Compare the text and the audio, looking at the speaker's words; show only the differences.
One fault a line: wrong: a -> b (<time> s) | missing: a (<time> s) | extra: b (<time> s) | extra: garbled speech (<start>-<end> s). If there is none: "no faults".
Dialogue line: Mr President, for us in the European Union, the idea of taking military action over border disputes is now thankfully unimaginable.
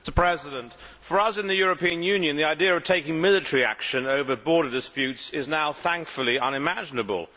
no faults